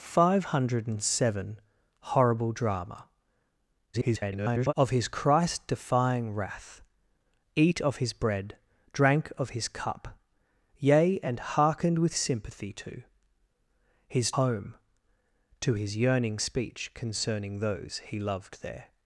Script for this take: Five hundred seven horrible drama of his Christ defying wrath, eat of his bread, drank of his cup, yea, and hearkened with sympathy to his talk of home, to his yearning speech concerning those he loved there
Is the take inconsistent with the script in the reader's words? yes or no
yes